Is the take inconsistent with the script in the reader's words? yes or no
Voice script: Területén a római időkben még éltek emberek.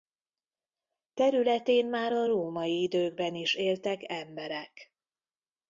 yes